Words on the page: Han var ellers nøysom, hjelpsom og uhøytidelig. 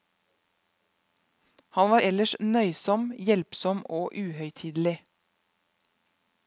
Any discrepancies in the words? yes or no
no